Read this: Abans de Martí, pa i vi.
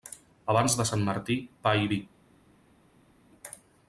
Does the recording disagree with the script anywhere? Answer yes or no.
yes